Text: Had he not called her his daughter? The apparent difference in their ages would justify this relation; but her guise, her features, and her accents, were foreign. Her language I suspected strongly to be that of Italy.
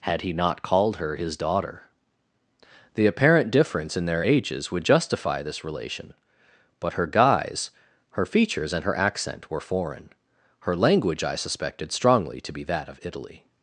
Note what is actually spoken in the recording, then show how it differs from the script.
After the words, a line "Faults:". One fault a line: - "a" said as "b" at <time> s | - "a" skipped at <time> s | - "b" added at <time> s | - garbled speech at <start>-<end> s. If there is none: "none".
Had he not called her his daughter? The apparent difference in their ages would justify this relation; but her guise, her features, and her accent, were foreign. Her language I suspected strongly to be that of Italy.
Faults:
- "accents" said as "accent" at 9.0 s